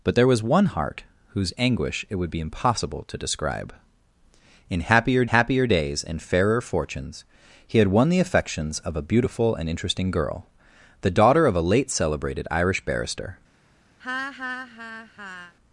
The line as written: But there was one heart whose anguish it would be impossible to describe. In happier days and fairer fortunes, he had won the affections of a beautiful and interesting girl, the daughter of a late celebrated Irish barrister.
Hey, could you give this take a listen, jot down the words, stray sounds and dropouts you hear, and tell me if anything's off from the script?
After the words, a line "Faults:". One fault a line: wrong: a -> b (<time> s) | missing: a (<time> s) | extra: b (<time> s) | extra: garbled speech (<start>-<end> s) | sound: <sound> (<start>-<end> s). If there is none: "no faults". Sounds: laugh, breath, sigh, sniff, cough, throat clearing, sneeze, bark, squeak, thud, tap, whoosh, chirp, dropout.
But there was one heart whose anguish it would be impossible to describe. In happier happier days and fairer fortunes, he had won the affections of a beautiful and interesting girl, the daughter of a late celebrated Irish barrister.
Faults:
extra: happier (5.2 s)
sound: laugh (14.0-15.5 s)